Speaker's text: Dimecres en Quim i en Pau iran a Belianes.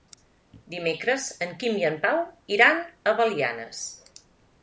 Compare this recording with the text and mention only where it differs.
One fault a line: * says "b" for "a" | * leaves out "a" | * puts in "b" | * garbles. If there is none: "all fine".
all fine